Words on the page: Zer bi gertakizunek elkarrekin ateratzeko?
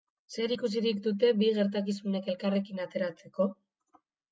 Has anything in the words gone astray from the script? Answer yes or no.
yes